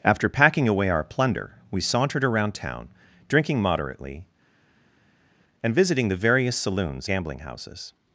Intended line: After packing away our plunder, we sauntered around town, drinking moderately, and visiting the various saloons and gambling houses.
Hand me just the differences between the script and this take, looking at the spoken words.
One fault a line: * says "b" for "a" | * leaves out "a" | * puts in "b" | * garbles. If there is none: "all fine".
* leaves out "and"